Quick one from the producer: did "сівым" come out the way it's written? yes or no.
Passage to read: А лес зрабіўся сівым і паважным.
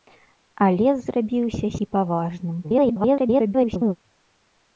no